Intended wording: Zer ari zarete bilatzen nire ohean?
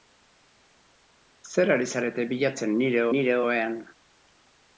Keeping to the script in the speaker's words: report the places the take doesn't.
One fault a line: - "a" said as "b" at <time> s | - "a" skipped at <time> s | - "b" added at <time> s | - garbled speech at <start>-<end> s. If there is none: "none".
- "nire" added at 3.2 s